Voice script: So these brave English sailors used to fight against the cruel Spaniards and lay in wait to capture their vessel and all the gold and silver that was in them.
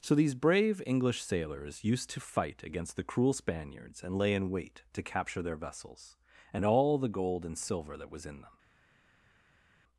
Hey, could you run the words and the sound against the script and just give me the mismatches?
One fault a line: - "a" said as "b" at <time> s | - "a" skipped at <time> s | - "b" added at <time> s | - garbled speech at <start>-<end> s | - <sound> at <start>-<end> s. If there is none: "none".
- "vessel" said as "vessels" at 5.6 s